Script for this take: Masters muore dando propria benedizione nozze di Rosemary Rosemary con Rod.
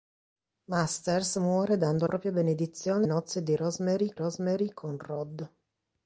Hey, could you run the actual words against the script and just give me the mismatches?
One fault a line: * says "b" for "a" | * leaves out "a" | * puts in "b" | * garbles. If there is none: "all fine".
all fine